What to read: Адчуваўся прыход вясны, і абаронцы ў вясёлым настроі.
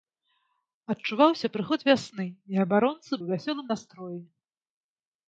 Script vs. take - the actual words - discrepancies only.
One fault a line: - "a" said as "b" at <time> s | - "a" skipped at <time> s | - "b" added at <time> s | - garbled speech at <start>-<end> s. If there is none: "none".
none